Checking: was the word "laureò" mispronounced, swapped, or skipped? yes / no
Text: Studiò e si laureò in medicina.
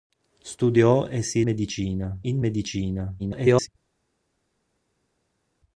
yes